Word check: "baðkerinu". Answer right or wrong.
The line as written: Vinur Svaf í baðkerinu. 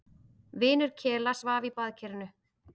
right